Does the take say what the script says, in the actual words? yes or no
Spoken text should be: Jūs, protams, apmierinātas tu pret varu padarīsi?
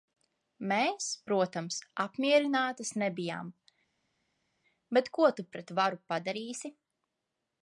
no